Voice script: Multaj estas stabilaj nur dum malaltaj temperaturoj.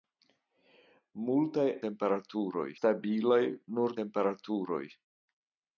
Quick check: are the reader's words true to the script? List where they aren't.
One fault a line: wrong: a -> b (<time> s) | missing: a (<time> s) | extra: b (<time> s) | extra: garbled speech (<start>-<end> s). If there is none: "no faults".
wrong: estas -> temperaturoj (1.9 s)
missing: dum malaltaj (4.0 s)